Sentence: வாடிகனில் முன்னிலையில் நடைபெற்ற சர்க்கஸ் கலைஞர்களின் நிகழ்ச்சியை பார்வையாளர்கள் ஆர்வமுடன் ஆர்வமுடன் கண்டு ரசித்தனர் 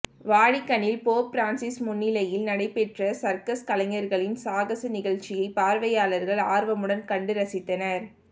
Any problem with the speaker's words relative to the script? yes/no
yes